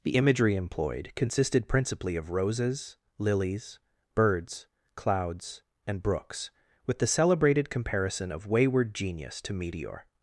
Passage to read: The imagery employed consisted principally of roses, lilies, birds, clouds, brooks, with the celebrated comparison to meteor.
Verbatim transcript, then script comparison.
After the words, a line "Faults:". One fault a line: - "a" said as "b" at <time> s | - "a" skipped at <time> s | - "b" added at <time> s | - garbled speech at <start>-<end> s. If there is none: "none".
The imagery employed consisted principally of roses, lilies, birds, clouds, and brooks, with the celebrated comparison of wayward genius to meteor.
Faults:
- "and" added at 5.9 s
- "of wayward genius" added at 8.3 s